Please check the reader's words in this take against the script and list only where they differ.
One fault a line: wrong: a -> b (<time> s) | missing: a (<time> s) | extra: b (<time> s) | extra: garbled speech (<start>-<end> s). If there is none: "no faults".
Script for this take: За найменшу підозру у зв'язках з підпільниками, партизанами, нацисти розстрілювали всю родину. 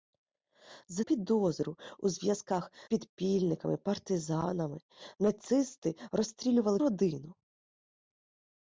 missing: найменшу (1.0 s)
missing: з (2.7 s)
missing: всю (6.8 s)